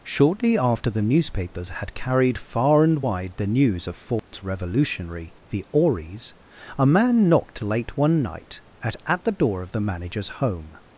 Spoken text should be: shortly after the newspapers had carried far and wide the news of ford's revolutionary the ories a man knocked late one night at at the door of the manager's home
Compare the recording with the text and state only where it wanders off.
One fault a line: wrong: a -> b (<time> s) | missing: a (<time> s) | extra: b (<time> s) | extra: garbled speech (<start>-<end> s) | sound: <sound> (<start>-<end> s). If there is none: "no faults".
sound: dropout (4.2-4.3 s)